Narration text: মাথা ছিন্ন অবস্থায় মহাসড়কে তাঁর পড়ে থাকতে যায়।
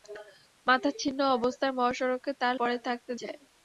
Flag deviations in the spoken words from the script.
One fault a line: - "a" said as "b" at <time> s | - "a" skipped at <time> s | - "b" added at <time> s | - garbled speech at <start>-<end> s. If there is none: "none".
none